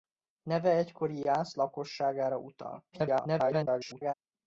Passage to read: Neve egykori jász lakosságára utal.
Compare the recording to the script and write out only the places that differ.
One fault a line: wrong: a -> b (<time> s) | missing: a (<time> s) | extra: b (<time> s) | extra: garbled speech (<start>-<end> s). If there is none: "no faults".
extra: garbled speech (2.9-4.1 s)